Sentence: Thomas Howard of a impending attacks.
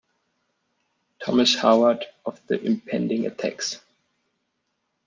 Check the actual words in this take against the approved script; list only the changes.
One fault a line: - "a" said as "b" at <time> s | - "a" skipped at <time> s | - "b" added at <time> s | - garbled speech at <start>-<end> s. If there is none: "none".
- "a" said as "the" at 2.5 s